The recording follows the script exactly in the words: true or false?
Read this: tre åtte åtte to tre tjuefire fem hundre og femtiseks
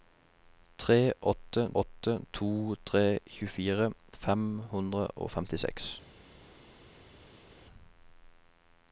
true